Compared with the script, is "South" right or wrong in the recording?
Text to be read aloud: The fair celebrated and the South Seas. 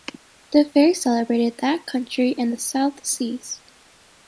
right